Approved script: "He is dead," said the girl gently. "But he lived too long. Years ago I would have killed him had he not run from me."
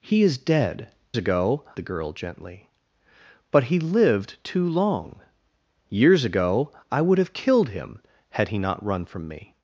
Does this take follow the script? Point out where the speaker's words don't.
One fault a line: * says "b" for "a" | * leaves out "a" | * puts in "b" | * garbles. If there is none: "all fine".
* says "ago" for "said"